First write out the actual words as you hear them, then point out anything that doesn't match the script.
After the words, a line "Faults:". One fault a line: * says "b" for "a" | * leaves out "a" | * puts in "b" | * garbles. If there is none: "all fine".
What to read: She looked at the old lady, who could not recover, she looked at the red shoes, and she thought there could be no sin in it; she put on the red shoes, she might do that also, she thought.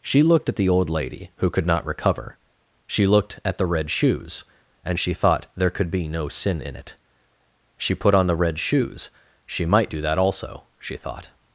She looked at the old lady, who could not recover, she looked at the red shoes, and she thought there could be no sin in it; she put on the red shoes, she might do that also, she thought.
Faults:
all fine